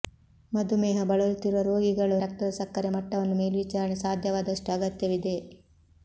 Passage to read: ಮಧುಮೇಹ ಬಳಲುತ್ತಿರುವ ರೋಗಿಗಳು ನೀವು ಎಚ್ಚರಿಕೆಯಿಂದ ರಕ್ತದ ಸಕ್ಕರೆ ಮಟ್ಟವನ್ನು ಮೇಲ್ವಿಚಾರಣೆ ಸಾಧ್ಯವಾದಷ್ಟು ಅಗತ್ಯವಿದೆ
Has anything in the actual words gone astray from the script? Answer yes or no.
yes